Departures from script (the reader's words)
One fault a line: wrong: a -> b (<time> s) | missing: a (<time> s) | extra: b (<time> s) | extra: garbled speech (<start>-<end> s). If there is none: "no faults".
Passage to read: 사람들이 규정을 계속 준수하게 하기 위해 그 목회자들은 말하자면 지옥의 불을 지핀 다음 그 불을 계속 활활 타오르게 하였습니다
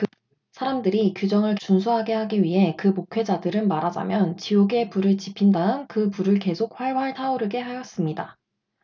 missing: 계속 (1.6 s)